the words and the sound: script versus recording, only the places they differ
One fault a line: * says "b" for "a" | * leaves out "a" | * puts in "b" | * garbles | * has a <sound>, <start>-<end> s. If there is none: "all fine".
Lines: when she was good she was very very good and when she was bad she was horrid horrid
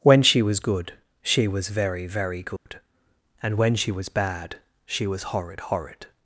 * has a dropout, 2.6-2.7 s